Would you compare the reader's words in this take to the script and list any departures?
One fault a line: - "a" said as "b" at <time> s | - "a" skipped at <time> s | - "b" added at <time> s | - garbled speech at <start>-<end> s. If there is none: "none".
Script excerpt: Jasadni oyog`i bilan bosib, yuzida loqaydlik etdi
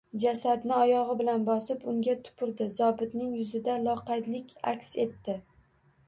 - "unga tupurdi zobitning" added at 1.9 s
- "aks" added at 4.7 s